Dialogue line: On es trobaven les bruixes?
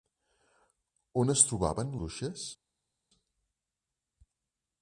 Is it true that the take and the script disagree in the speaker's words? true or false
true